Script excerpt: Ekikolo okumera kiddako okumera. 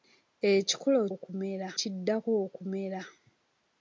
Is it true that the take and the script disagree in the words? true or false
false